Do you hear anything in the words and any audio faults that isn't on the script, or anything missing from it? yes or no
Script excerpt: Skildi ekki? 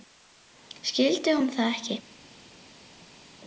yes